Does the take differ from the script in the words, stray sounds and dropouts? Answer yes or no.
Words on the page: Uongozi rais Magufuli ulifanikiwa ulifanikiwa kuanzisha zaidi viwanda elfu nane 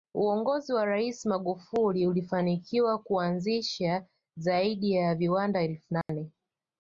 yes